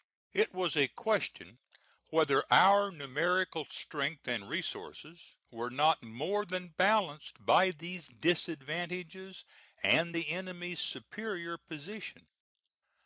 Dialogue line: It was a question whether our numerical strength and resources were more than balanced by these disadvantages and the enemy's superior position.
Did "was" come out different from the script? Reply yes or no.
no